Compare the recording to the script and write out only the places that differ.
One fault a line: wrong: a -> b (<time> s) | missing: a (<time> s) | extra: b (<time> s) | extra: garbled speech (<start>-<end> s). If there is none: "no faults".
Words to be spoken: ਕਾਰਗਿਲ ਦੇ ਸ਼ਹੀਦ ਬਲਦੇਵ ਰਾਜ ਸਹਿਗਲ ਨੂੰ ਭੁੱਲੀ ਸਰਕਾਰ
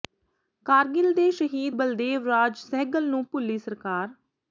no faults